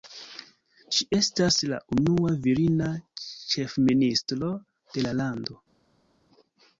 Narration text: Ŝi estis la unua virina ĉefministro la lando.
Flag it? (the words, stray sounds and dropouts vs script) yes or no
yes